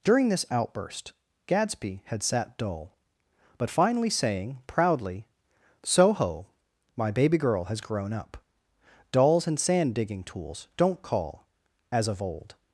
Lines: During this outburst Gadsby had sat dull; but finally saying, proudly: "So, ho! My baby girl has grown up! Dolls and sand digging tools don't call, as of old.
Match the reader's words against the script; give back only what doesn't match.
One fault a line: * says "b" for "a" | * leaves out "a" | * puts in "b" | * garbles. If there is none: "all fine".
all fine